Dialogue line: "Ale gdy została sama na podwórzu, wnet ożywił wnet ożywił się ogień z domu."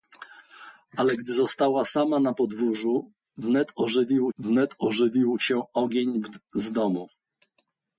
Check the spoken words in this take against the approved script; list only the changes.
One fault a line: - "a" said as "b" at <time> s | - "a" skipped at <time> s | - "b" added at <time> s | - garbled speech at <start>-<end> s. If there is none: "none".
none